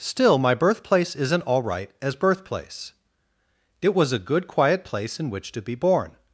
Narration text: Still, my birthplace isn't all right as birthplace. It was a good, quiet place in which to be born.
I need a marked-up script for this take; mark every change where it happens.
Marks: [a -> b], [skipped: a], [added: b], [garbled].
Still, my birthplace isn't all right as birthplace. It was a good, quiet place in which to be born.